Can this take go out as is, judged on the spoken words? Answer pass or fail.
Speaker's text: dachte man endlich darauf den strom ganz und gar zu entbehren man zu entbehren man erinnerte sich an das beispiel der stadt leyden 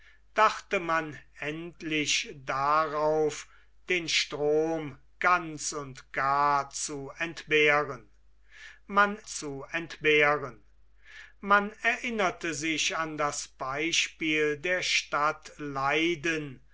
pass